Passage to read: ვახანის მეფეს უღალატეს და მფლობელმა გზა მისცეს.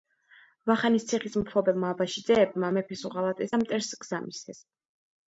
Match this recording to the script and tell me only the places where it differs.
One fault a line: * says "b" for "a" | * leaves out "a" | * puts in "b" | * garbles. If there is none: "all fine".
* puts in "ციხის მფლობელმა აბაშიძეებმა"
* says "მტერს" for "მფლობელმა"